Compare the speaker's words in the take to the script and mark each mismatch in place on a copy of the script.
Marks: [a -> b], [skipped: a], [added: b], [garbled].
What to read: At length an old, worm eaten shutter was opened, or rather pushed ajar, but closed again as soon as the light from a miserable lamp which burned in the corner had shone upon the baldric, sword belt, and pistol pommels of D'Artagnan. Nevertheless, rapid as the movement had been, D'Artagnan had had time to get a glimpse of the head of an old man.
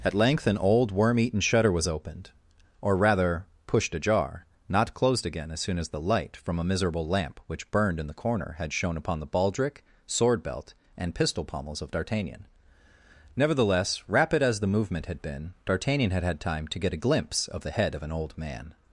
At length an old, worm eaten shutter was opened, or rather pushed ajar, [but -> not] closed again as soon as the light from a miserable lamp which burned in the corner had shone upon the baldric, sword belt, and pistol pommels of D'Artagnan. Nevertheless, rapid as the movement had been, D'Artagnan had had time to get a glimpse of the head of an old man.